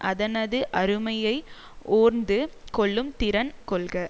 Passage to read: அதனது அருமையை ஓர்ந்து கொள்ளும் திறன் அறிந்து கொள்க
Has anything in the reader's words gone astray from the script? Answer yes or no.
yes